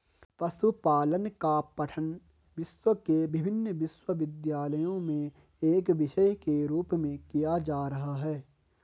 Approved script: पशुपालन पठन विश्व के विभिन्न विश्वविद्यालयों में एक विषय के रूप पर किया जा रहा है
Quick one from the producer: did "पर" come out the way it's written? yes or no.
no